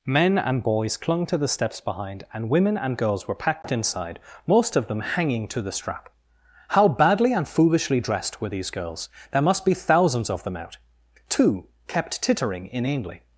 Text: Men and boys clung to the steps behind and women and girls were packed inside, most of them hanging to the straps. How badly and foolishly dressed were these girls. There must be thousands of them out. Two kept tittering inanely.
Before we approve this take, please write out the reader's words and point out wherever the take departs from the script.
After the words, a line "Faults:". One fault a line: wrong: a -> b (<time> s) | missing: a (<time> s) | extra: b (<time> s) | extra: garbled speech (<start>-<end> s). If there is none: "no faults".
Men and boys clung to the steps behind and women and girls were packed inside, most of them hanging to the strap. How badly and foolishly dressed were these girls. There must be thousands of them out. Two kept tittering inanely.
Faults:
wrong: straps -> strap (5.7 s)